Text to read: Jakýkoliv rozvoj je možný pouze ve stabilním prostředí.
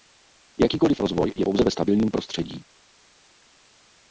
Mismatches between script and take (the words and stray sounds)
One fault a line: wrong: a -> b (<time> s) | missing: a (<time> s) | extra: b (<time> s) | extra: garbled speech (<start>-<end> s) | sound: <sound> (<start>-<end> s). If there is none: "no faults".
missing: možný (1.4 s)